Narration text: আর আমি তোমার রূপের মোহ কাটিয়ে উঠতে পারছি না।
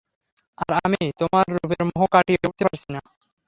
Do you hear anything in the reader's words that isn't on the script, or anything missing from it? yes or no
no